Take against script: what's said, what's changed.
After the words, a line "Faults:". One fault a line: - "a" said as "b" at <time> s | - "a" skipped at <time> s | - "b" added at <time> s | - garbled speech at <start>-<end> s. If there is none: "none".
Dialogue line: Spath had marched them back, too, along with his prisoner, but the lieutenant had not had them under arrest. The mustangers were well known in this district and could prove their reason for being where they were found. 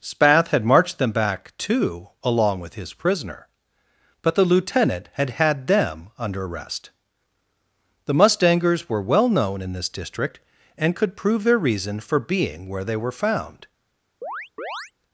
Spath had marched them back, too, along with his prisoner, but the lieutenant had had them under arrest. The mustangers were well known in this district and could prove their reason for being where they were found.
Faults:
- "not" skipped at 5.3 s